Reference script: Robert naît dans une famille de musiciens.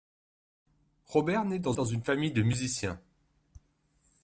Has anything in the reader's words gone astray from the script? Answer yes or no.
yes